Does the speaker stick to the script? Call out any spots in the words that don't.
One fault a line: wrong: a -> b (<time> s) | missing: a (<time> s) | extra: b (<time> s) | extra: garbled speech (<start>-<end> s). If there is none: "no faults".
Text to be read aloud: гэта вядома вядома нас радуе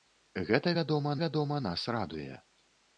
no faults